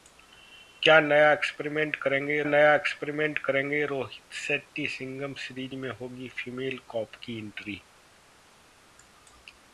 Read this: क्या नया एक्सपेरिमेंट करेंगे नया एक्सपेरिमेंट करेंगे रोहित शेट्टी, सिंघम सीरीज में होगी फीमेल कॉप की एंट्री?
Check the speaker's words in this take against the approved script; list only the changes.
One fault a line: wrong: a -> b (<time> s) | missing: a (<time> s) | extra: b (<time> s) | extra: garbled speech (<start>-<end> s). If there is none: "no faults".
no faults